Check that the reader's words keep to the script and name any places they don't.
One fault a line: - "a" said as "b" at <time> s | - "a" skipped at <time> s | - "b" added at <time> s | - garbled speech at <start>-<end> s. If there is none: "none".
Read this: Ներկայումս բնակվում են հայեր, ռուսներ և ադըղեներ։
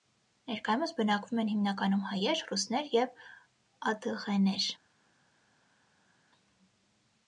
- "հիմնականում" added at 1.5 s